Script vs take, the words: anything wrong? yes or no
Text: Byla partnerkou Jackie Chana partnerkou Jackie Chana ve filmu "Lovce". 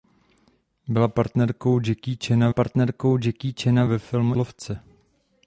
no